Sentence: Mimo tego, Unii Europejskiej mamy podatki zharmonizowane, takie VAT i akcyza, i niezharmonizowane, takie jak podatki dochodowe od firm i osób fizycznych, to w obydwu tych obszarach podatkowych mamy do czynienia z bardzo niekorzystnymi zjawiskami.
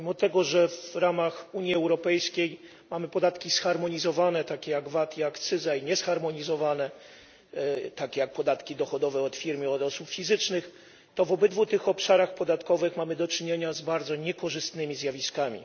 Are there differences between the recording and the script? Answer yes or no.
yes